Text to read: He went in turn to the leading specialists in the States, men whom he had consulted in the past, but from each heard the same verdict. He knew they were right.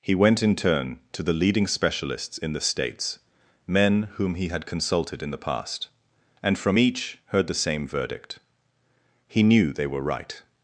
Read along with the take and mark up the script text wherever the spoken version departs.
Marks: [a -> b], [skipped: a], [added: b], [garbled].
He went in turn to the leading specialists in the States, men whom he had consulted in the past, [but -> and] from each heard the same verdict. He knew they were right.